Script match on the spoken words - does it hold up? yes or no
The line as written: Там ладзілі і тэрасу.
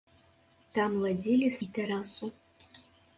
yes